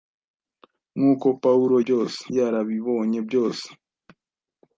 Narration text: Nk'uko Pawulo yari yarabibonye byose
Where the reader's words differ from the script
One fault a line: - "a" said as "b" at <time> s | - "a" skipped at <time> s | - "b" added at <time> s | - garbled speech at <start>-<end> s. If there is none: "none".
- "yari" said as "byose" at 1.8 s